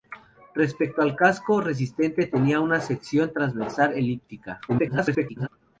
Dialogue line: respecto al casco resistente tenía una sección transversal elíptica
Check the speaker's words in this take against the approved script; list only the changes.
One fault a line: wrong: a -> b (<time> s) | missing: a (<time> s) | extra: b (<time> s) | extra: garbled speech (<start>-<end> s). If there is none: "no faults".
extra: garbled speech (4.7-5.5 s)